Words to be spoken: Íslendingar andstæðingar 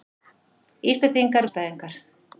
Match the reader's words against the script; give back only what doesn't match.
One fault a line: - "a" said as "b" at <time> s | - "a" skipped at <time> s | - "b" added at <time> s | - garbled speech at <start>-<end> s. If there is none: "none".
none